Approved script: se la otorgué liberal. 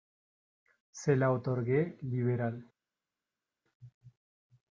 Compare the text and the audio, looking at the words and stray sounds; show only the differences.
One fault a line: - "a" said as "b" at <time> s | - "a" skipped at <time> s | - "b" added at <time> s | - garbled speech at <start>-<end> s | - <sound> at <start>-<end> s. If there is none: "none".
none